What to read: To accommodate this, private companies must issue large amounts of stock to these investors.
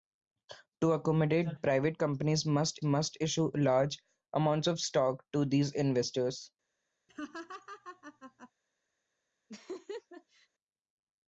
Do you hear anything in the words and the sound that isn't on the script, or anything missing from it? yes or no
yes